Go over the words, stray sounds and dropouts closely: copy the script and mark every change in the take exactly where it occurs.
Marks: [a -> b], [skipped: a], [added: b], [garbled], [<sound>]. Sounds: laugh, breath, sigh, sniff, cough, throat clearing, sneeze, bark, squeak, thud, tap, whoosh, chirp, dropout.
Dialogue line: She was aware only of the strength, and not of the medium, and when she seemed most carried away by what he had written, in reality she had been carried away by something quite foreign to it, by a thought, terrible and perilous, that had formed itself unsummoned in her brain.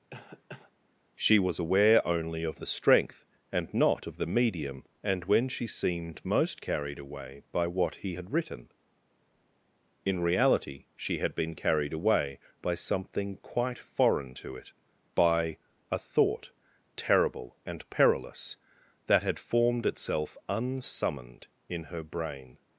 [cough] She was aware only of the strength, and not of the medium, and when she seemed most carried away by what he had written, in reality she had been carried away by something quite foreign to it, by a thought, terrible and perilous, that had formed itself unsummoned in her brain.